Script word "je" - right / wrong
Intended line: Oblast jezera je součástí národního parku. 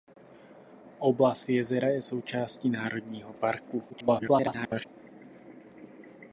right